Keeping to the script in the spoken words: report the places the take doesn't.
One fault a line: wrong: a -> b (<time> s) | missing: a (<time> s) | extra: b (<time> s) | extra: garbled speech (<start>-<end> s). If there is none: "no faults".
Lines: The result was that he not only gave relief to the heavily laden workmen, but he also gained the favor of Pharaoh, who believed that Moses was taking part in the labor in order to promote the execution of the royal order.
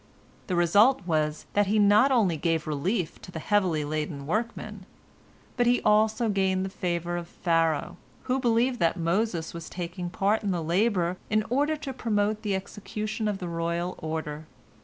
no faults